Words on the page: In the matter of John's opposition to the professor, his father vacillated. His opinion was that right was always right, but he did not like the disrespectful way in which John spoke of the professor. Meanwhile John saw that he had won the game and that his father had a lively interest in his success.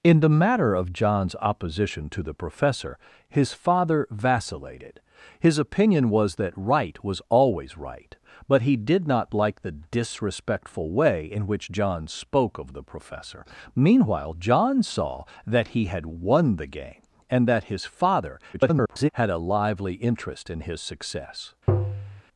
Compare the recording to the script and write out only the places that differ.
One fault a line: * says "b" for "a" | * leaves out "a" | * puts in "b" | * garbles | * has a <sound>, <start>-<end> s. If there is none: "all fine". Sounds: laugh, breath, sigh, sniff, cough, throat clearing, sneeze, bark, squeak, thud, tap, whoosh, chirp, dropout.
* garbles
* has a tap, 21.7-22.2 s